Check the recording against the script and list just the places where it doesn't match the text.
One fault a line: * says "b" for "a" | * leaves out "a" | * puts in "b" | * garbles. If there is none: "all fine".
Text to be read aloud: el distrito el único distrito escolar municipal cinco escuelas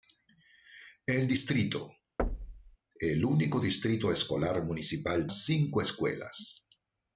all fine